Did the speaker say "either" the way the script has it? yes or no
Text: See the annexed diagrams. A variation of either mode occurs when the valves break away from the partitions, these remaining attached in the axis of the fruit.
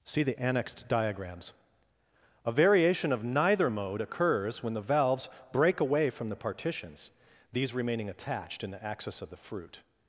no